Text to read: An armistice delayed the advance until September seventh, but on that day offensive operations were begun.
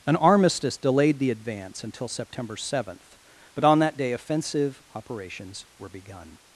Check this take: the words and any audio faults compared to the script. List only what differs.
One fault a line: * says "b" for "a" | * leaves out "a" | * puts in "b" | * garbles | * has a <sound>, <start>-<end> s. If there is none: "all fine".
all fine